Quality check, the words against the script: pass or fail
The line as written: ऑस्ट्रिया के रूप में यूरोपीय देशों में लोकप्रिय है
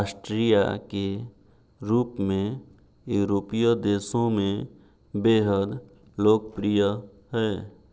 fail